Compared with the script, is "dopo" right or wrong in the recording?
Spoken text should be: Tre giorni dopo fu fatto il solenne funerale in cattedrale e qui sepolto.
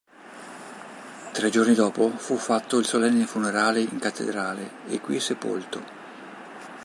right